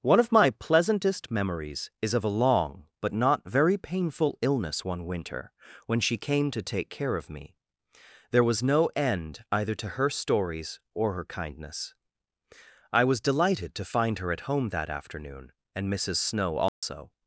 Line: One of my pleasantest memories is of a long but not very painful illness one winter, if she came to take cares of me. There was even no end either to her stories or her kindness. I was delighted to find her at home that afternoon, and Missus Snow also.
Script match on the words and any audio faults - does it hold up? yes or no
no